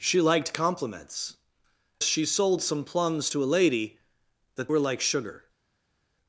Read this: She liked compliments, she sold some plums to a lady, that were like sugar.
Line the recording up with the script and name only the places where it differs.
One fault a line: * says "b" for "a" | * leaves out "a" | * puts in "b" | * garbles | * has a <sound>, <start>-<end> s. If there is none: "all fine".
all fine